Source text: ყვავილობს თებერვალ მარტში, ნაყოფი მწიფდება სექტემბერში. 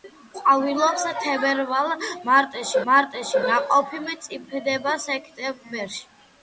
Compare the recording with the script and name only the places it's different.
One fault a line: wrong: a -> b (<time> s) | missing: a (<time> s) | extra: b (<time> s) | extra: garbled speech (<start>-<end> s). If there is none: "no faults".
extra: მარტში (2.9 s)